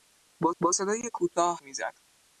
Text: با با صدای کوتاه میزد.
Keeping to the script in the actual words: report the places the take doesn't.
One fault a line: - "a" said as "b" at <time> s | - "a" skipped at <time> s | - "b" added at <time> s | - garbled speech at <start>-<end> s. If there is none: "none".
none